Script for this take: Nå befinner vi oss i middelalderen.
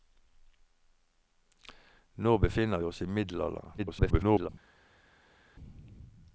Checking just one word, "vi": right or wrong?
wrong